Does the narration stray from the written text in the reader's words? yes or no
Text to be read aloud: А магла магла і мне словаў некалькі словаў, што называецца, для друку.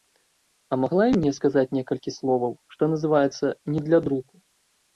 yes